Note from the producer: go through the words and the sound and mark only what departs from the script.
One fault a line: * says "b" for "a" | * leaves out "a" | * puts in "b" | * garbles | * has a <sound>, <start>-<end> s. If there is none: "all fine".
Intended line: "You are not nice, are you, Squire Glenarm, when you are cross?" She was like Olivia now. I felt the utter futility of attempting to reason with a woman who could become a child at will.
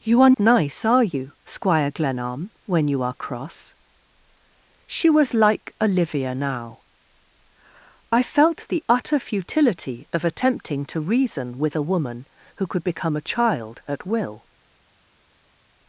* leaves out "not"